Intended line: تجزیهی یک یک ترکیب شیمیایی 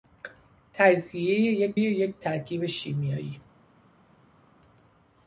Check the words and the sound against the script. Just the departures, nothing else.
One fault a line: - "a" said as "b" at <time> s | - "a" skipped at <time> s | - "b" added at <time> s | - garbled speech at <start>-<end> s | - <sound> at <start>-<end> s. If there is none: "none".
none